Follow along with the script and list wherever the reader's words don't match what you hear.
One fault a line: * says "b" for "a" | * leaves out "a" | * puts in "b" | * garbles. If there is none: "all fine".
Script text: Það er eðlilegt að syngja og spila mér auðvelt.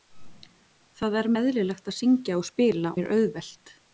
all fine